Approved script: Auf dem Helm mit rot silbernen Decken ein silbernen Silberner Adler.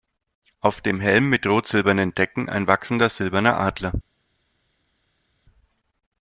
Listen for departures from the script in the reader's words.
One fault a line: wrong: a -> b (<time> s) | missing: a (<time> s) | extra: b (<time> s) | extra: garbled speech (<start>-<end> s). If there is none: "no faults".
wrong: silbernen -> wachsender (2.6 s)